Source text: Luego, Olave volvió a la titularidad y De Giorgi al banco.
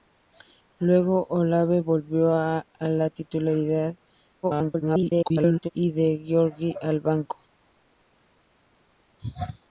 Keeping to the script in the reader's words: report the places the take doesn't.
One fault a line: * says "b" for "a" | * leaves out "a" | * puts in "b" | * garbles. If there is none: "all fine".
* garbles